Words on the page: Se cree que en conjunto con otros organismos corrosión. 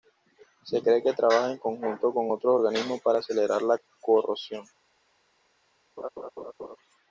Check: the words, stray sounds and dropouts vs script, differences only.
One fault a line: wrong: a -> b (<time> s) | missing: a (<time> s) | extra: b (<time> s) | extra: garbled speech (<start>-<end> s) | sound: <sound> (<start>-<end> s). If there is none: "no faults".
extra: trabaja (1.1 s)
extra: para acelerar la (3.0 s)
sound: laugh (6.0-6.8 s)